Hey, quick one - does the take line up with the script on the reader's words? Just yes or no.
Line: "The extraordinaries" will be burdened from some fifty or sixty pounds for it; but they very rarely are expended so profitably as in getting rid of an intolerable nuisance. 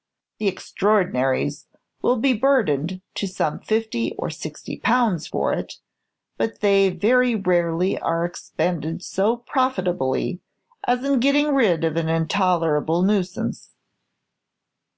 no